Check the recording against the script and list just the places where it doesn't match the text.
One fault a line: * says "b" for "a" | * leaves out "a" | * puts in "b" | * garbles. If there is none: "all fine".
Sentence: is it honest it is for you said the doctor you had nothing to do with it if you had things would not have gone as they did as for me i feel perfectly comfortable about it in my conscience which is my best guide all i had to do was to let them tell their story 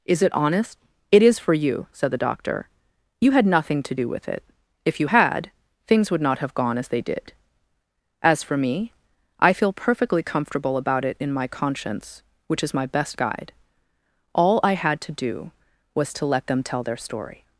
all fine